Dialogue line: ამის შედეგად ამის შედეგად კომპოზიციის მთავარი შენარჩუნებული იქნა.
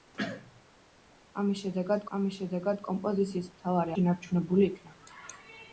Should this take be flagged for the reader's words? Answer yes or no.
no